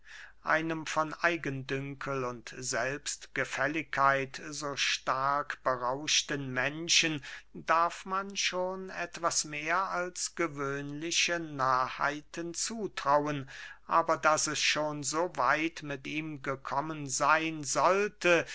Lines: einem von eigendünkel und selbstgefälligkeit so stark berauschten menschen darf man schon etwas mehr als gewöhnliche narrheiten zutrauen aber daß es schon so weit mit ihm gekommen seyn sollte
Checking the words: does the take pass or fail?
pass